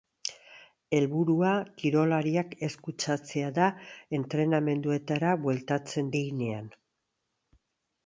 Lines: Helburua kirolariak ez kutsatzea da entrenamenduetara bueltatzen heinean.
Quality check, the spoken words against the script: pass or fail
pass